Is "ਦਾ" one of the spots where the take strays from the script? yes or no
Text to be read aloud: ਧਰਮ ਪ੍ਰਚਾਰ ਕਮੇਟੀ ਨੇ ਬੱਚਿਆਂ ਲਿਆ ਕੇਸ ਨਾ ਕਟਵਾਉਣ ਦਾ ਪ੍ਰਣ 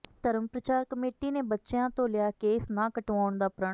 no